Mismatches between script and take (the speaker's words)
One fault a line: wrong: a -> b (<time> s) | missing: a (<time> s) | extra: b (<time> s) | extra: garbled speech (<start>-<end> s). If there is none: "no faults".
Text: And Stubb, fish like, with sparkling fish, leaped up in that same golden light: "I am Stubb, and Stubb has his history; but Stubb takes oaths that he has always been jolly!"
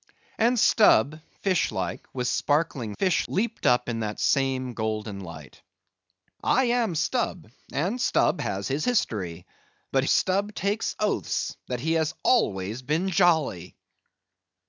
no faults